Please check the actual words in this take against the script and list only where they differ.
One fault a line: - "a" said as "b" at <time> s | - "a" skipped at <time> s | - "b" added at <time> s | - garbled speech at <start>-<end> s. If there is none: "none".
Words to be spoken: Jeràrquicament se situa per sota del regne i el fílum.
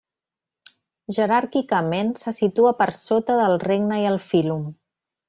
none